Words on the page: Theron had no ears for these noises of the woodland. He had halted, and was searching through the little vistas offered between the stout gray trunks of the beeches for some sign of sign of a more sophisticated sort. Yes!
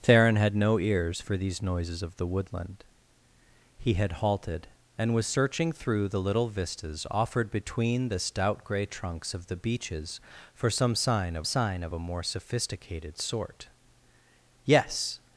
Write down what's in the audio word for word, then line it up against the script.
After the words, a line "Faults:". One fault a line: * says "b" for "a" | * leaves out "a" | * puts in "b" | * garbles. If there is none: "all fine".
Theron had no ears for these noises of the woodland. He had halted, and was searching through the little vistas offered between the stout gray trunks of the beeches for some sign of sign of a more sophisticated sort. Yes!
Faults:
all fine